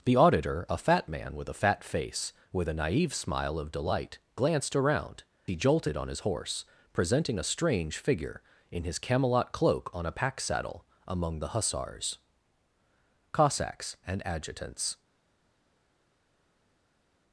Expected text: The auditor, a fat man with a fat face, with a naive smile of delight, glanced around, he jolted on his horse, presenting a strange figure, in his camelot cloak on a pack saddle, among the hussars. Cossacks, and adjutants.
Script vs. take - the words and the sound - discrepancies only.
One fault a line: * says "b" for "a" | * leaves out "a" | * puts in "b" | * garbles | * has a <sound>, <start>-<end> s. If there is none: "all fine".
all fine